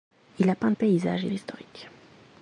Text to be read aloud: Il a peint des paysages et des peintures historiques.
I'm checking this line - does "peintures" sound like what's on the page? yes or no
no